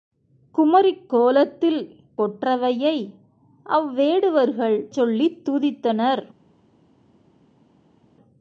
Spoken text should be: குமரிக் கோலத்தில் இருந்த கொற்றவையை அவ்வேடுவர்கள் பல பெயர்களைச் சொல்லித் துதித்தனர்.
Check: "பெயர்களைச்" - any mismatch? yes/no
yes